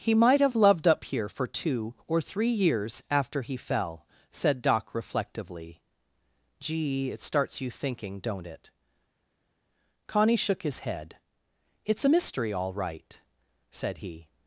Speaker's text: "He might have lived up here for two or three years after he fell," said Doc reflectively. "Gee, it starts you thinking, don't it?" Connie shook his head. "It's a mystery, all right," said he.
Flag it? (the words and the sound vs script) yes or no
yes